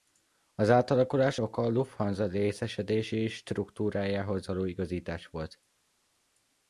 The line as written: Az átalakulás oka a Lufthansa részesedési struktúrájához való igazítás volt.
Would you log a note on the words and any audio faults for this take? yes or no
no